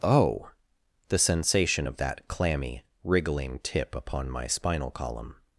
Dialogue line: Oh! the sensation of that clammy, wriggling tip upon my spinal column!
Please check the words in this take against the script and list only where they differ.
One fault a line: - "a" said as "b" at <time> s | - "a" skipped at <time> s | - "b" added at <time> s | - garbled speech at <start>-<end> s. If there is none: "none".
none